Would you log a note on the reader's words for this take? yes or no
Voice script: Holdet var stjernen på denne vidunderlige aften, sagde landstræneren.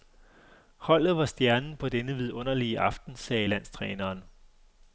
no